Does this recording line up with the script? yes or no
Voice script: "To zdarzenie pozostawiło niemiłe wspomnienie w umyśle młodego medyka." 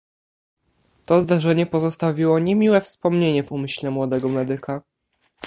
yes